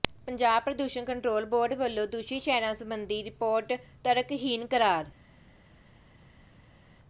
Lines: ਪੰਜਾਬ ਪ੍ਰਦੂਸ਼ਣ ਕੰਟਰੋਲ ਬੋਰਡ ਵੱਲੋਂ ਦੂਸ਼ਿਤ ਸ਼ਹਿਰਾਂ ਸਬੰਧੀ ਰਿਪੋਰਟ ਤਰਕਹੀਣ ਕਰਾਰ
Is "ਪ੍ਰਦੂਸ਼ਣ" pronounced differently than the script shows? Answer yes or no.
no